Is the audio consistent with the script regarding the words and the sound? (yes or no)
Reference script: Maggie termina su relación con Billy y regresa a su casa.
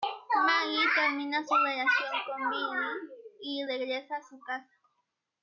yes